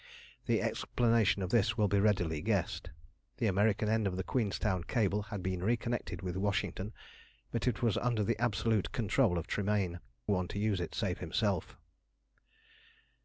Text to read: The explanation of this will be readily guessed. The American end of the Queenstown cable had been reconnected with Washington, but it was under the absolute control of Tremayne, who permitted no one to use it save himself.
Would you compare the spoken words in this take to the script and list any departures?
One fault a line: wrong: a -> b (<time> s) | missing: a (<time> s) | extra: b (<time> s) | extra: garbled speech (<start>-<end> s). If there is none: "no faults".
missing: who permitted no (10.0 s)